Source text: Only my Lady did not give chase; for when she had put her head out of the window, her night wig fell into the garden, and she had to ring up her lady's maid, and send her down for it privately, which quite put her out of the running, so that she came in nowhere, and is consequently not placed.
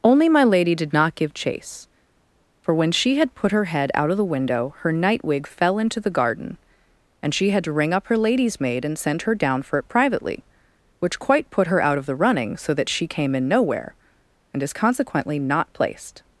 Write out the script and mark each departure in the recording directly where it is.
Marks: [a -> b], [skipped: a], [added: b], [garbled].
Only my Lady did not give chase; for when she had put her head out of the window, her night wig fell into the garden, and she had to ring up her lady's maid, and send her down for it privately, which quite put her out of the running, so that she came in nowhere, and is consequently not placed.